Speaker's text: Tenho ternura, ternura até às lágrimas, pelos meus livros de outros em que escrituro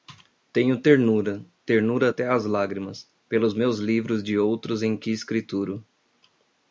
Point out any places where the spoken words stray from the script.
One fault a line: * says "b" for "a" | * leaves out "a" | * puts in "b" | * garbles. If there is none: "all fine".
all fine